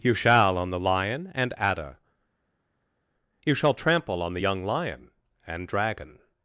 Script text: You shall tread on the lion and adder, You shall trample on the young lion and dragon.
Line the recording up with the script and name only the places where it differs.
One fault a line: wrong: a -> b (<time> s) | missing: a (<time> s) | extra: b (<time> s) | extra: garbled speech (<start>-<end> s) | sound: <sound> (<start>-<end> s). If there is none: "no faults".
missing: tread (0.6 s)